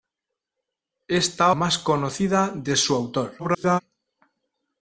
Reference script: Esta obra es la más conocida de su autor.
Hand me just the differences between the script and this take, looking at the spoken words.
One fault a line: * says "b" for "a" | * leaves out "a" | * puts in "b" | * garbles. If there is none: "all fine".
* leaves out "obra es la"
* garbles